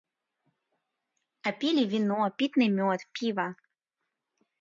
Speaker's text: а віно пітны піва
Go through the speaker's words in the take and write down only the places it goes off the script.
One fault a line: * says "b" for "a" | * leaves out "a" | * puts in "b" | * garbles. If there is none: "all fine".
* puts in "пілі"
* puts in "мёд"